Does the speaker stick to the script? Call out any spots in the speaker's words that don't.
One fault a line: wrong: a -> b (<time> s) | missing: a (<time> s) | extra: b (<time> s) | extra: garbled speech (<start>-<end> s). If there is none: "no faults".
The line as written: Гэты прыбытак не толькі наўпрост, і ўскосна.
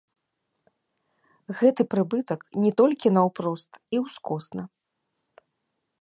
no faults